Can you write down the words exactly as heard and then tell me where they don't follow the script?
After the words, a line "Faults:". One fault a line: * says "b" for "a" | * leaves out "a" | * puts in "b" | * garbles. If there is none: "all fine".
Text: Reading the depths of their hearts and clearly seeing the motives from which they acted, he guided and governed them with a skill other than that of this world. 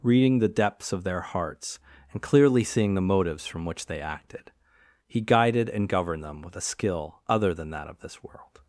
Reading the depths of their hearts and clearly seeing the motives from which they acted, he guided and governed them with a skill other than that of this world.
Faults:
all fine